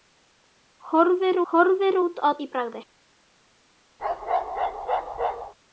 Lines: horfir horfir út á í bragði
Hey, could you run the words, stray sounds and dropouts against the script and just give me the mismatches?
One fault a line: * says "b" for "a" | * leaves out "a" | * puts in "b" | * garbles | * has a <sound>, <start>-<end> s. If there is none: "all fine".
* has a bark, 4.0-5.5 s